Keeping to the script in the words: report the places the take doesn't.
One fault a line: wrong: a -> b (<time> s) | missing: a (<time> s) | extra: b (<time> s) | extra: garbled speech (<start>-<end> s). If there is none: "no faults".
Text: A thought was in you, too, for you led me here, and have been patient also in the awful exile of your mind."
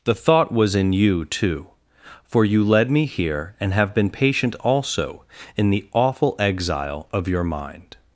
wrong: A -> The (0.0 s)